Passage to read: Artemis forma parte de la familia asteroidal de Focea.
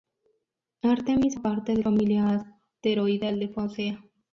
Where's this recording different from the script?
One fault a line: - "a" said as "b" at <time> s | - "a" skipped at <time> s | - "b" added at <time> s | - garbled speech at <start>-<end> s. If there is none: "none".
- "forma" skipped at 1.4 s
- "la" skipped at 1.8 s